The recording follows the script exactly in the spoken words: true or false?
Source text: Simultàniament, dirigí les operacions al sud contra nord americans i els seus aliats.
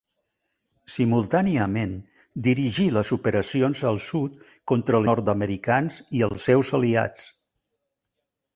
true